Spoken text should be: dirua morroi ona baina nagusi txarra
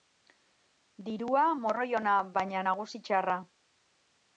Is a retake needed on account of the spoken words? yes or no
no